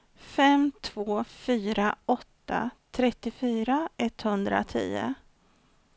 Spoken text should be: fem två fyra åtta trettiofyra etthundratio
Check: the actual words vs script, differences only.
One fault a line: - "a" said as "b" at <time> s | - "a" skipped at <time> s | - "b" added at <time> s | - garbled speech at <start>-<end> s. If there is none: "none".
none